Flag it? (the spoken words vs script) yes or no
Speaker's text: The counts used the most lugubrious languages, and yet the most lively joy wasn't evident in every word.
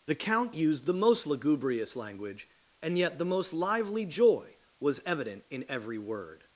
yes